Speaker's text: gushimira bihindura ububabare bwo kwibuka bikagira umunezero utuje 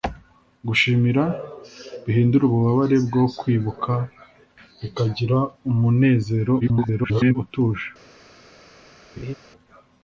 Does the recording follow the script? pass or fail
fail